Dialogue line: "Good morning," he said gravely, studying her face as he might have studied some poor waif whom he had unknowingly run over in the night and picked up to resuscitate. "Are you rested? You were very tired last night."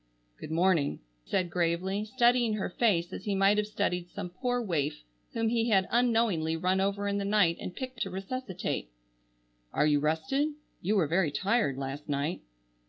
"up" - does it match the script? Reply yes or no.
no